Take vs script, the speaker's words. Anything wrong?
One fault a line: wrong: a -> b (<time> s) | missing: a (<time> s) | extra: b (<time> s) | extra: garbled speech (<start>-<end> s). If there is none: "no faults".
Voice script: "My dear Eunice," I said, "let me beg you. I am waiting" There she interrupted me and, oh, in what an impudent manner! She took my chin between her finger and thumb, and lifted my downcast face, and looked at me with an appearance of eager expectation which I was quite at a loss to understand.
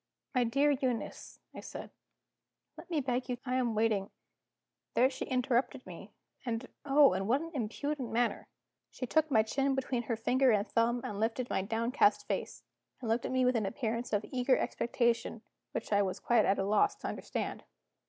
no faults